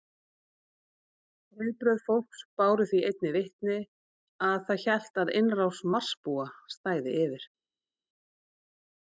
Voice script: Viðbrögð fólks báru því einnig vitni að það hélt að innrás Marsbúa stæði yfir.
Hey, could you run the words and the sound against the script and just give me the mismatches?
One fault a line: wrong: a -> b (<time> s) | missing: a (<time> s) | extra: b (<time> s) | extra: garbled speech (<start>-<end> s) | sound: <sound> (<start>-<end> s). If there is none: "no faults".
no faults